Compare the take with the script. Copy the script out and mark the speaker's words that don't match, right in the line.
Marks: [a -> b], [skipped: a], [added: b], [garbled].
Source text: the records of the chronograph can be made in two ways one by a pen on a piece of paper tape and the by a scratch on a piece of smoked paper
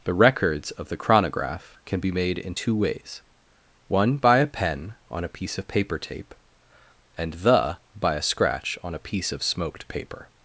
the records of the chronograph can be made in two ways one by a pen on a piece of paper tape and the by a scratch on a piece of smoked paper